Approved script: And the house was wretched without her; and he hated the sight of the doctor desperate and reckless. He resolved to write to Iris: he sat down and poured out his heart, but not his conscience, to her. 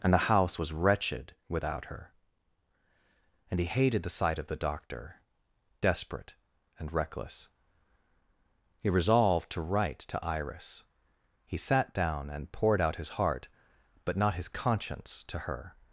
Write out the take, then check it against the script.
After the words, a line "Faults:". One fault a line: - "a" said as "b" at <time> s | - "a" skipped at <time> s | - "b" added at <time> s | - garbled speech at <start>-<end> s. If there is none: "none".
And the house was wretched without her; and he hated the sight of the doctor desperate and reckless. He resolved to write to Iris: he sat down and poured out his heart, but not his conscience, to her.
Faults:
none